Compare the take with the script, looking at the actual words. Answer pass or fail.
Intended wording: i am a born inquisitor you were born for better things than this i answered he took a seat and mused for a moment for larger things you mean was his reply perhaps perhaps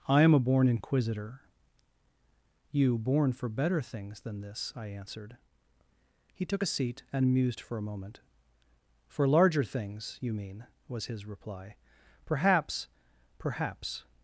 fail